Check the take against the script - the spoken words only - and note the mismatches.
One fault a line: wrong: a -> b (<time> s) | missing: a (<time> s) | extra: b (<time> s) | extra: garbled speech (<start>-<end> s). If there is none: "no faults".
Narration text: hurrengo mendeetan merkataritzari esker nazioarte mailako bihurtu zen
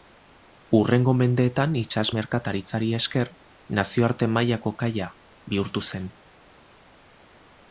extra: itsas (1.8 s)
extra: kaia (4.8 s)